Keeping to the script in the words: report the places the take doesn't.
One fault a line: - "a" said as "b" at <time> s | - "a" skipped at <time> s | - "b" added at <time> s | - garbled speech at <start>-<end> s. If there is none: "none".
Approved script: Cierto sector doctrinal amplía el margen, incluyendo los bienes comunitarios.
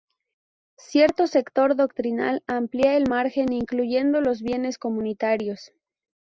none